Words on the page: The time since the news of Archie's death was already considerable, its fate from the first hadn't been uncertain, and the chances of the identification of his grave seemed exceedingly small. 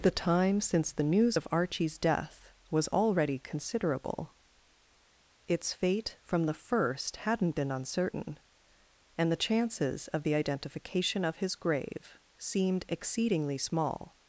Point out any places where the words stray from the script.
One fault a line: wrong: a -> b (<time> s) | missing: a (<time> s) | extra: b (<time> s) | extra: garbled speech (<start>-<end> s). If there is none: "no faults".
no faults